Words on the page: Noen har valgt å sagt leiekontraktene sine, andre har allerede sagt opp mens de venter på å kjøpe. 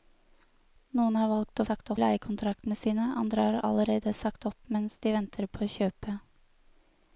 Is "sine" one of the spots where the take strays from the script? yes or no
no